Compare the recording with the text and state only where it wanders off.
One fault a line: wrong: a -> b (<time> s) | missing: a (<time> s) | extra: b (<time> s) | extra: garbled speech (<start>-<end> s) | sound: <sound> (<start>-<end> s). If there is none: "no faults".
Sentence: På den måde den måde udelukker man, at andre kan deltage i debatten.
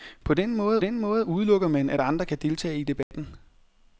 sound: dropout (3.0-3.1 s)